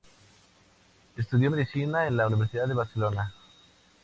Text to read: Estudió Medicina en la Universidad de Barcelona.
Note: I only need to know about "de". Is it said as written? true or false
true